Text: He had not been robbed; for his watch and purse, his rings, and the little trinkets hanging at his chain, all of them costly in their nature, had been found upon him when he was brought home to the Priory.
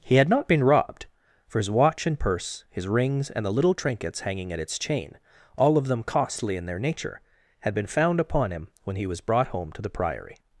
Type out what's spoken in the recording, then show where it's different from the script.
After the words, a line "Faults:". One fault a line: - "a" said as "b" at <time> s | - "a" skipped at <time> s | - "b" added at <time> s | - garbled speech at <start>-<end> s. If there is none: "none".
He had not been robbed; for his watch and purse, his rings, and the little trinkets hanging at its chain, all of them costly in their nature, had been found upon him when he was brought home to the Priory.
Faults:
- "his" said as "its" at 4.6 s